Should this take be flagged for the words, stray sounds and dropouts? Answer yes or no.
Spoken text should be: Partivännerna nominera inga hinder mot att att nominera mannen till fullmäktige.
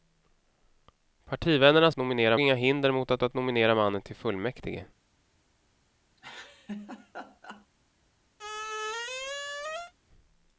yes